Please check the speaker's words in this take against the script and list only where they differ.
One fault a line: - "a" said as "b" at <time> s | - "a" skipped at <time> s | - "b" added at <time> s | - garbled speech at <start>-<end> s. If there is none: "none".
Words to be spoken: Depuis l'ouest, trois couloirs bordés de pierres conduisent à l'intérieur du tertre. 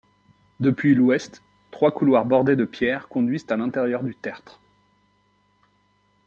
none